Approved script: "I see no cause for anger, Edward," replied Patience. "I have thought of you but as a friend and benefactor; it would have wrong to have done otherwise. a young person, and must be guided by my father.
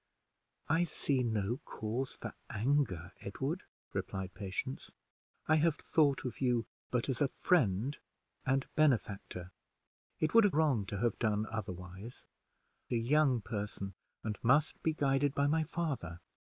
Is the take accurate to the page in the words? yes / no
yes